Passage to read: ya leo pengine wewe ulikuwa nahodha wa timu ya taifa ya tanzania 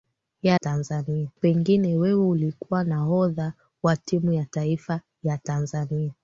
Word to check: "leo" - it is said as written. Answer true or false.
false